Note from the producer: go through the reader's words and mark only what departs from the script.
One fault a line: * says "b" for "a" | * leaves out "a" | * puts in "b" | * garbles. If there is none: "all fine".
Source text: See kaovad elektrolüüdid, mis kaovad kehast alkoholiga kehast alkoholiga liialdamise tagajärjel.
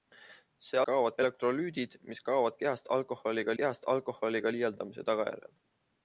all fine